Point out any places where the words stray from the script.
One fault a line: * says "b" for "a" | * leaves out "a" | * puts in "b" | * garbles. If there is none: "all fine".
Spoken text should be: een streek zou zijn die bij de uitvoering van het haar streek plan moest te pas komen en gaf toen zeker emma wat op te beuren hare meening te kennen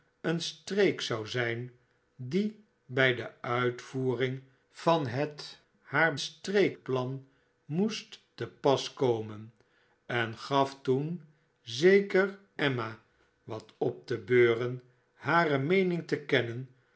all fine